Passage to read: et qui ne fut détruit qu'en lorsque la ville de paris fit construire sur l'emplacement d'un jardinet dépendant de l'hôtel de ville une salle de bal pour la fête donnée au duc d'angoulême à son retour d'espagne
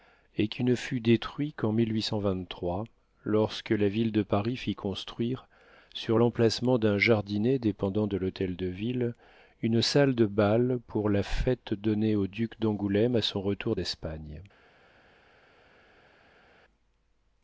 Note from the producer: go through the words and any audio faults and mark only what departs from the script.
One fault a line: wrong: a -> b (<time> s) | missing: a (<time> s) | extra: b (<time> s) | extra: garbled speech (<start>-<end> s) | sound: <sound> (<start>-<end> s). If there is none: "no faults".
no faults